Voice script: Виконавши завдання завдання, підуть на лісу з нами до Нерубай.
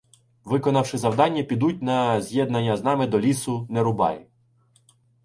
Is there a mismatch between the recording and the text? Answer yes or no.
yes